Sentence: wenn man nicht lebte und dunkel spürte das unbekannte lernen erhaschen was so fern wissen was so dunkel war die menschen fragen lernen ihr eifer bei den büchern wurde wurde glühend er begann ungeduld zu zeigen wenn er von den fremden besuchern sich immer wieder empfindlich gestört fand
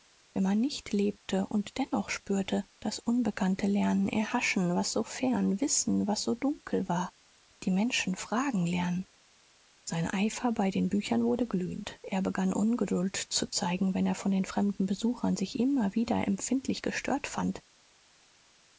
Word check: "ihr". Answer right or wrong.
wrong